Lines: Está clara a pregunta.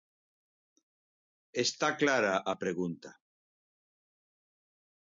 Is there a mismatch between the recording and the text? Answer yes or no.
no